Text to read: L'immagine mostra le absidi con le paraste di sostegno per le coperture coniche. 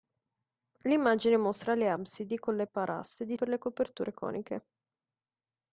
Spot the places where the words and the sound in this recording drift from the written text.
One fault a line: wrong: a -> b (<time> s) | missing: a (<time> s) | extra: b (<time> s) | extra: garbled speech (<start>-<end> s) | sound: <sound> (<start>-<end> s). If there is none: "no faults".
missing: sostegno (3.4 s)